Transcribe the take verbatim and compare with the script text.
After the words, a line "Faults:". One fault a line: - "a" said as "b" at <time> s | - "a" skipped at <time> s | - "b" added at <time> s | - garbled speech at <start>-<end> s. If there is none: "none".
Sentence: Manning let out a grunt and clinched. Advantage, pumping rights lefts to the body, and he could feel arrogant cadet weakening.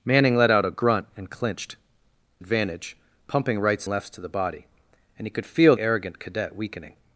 Manning let out a grunt and clinched. Advantage, pumping rights lefts to the body, and he could feel arrogant cadet weakening.
Faults:
none